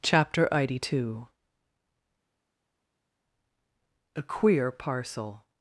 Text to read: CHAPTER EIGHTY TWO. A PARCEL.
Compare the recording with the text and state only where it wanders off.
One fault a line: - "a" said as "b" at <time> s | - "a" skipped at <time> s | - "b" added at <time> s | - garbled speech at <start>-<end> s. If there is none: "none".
- "QUEER" added at 4.2 s